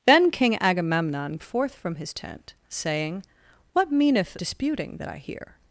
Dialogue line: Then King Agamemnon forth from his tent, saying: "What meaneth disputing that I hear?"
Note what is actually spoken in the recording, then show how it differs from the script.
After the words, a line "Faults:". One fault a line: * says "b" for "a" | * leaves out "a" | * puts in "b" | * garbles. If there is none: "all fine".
Then King Agamemnon forth from his tent, saying: "What meaneth disputing that I hear?"
Faults:
all fine